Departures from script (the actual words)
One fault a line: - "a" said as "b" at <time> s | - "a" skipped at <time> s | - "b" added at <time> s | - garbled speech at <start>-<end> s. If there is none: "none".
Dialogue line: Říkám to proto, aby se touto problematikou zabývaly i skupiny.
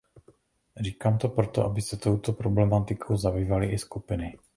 none